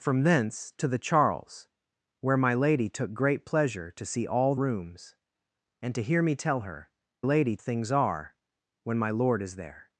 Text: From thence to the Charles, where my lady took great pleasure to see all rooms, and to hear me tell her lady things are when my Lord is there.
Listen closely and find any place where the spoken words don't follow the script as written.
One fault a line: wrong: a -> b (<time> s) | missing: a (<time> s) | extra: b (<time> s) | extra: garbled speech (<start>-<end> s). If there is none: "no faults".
no faults